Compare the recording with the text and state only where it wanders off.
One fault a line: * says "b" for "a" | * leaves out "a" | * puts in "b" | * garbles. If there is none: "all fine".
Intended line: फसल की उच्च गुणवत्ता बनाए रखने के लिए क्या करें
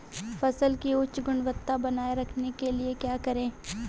all fine